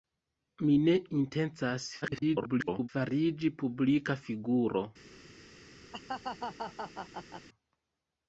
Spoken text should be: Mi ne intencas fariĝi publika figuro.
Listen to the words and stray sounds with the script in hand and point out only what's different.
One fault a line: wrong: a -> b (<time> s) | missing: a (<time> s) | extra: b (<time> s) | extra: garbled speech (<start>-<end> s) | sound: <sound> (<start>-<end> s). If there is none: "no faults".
extra: garbled speech (2.0-2.9 s)
sound: laugh (5.9-7.5 s)